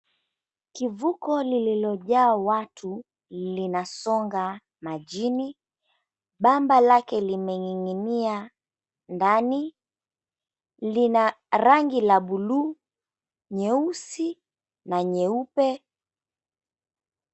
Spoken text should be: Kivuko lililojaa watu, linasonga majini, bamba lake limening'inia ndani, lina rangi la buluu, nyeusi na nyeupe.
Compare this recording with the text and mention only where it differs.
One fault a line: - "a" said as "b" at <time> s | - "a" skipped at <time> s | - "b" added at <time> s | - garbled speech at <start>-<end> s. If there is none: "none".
none